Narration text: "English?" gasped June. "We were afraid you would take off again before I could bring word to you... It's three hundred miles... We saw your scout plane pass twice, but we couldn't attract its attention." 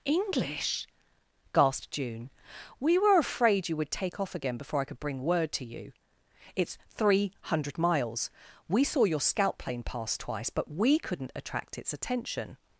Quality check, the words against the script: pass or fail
pass